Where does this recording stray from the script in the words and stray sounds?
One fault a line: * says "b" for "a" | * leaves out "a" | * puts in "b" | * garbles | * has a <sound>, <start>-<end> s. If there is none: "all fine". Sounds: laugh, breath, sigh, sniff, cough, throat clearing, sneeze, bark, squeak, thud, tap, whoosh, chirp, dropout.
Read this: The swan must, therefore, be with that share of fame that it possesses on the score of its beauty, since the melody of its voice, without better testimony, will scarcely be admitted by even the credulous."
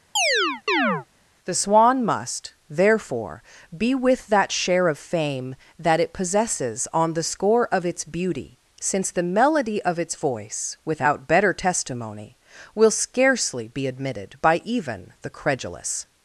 * has a chirp, 0.2-1.1 s